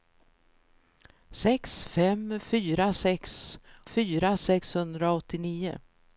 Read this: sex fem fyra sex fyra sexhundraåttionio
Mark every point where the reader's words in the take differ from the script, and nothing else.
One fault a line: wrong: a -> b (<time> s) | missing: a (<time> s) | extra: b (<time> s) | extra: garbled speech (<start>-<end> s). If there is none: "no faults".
no faults